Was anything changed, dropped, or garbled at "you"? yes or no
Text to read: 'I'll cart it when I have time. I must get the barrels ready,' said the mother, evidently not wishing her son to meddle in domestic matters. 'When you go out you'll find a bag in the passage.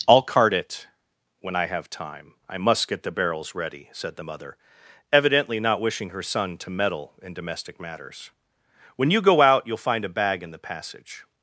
no